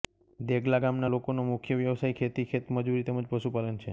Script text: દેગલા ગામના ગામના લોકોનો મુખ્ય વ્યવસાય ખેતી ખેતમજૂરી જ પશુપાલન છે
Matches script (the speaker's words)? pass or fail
fail